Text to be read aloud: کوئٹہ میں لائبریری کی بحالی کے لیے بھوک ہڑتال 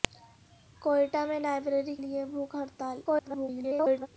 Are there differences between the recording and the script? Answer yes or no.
yes